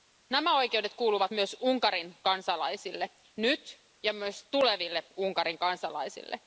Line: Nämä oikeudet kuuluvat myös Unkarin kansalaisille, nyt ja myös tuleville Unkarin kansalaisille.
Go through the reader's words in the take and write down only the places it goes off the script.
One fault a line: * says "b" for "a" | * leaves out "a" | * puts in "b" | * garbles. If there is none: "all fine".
all fine